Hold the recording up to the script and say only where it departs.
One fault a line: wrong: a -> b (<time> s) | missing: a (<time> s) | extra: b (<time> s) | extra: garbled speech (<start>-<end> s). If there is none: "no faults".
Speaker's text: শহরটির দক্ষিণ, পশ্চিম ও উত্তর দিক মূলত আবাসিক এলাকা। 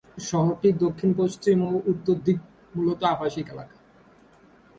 no faults